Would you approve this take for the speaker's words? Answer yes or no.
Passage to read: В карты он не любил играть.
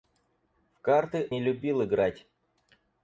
no